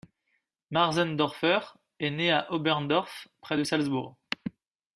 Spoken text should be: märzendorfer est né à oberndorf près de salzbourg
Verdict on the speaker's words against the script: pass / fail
pass